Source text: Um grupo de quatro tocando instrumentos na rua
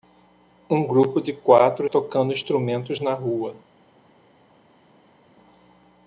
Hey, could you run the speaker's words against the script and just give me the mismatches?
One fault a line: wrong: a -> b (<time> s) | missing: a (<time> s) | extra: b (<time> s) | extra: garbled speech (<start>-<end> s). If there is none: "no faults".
no faults